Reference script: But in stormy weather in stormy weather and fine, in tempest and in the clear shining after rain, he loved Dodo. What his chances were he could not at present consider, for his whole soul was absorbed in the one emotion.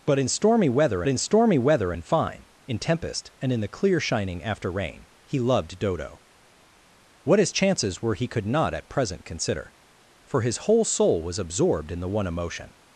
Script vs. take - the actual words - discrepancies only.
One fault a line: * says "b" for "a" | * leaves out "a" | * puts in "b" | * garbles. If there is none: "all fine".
all fine